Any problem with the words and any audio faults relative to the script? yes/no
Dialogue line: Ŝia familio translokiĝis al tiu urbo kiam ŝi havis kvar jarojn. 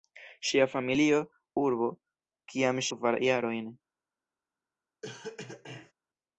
yes